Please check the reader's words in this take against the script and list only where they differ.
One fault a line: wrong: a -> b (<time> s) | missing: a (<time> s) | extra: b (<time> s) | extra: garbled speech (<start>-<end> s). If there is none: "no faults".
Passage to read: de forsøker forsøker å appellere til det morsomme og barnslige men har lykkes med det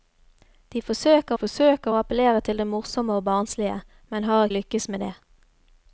no faults